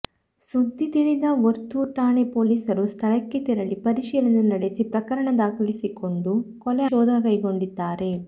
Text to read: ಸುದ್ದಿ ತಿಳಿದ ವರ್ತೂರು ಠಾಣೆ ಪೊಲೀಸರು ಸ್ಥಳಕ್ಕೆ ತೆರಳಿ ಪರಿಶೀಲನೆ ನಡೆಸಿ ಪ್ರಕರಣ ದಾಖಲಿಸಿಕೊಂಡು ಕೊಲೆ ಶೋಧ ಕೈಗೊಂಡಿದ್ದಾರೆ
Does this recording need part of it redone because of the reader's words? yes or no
no